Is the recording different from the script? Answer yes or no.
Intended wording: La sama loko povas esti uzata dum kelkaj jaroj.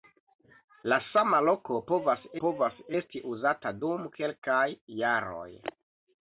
yes